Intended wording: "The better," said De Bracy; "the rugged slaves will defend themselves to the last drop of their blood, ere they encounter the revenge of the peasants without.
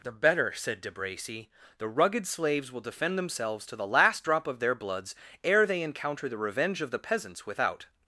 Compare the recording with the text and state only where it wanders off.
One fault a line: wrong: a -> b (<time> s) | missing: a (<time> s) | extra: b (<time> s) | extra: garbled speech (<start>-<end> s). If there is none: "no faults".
wrong: blood -> bloods (4.7 s)